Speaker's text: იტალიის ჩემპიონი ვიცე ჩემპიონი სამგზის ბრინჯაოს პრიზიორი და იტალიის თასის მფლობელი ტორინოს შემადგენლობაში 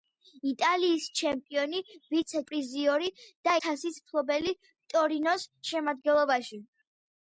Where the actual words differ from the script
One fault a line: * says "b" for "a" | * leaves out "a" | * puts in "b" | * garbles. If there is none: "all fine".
* leaves out "ჩემპიონი სამგზის ბრინჯაოს"
* leaves out "იტალიის"